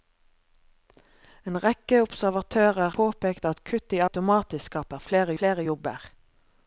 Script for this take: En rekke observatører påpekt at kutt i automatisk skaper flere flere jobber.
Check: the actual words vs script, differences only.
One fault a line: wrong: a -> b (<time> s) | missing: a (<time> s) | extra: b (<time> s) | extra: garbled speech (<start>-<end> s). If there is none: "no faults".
no faults